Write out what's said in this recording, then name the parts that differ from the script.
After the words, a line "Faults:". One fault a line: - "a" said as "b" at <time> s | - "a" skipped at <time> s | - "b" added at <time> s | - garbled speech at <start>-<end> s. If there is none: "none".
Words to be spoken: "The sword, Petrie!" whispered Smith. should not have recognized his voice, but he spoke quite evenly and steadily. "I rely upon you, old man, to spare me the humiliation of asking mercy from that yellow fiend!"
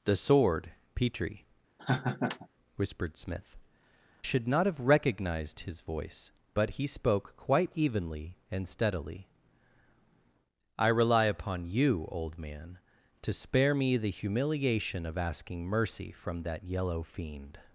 "The sword, Petrie!" whispered Smith. should not have recognized his voice, but he spoke quite evenly and steadily. "I rely upon you, old man, to spare me the humiliation of asking mercy from that yellow fiend!"
Faults:
none